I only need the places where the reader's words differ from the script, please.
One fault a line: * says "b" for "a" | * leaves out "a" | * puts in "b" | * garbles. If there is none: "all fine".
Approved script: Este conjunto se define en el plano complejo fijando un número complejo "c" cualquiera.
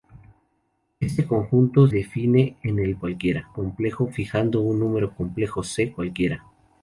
* leaves out "se"
* says "cualquiera" for "plano"